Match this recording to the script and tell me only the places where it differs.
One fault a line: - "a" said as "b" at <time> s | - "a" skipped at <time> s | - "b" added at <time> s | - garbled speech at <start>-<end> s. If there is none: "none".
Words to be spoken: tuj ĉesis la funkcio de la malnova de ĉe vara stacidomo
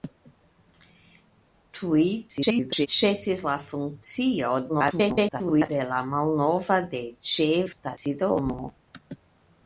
- garbled speech at 2.3-2.9 s
- garbled speech at 4.7-5.7 s
- "vara" skipped at 7.5 s